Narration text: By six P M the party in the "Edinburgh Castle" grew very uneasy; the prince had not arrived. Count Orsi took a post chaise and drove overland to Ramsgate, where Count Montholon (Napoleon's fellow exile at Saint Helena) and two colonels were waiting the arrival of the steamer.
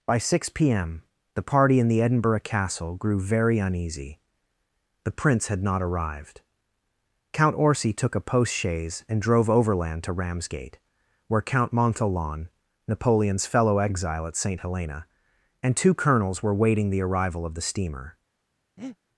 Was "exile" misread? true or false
false